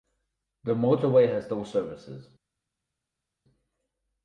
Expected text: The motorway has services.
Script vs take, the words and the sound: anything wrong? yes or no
yes